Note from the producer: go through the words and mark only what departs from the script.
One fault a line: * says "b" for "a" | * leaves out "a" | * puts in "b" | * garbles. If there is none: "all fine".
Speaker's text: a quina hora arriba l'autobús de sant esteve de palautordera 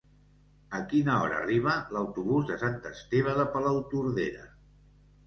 all fine